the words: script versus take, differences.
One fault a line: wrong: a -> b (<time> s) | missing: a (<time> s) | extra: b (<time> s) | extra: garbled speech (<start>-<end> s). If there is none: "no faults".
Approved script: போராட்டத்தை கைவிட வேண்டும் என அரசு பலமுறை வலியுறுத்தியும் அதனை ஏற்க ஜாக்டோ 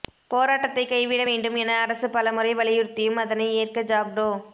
no faults